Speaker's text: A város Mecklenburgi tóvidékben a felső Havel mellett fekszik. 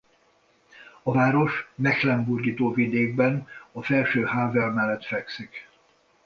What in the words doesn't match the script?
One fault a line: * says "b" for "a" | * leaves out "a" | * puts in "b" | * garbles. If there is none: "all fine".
all fine